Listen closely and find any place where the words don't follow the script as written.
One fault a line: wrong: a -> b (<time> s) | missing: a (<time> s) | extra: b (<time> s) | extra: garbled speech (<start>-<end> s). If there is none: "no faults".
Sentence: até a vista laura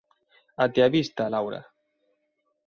no faults